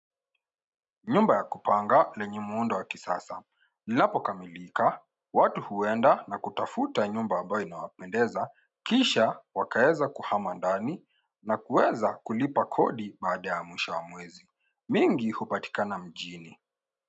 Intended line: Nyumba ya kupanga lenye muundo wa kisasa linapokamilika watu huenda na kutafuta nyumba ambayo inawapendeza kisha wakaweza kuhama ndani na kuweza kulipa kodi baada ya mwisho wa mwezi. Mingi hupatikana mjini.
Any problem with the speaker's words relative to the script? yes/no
no